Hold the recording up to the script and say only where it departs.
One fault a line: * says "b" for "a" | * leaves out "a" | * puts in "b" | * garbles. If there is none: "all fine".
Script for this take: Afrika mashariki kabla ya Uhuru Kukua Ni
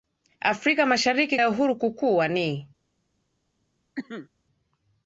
* leaves out "kabla"